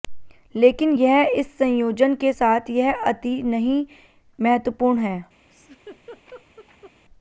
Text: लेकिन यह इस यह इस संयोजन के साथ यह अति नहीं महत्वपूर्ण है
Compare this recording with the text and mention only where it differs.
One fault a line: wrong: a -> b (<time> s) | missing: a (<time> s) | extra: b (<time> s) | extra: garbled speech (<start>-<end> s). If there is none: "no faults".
missing: यह इस (1.5 s)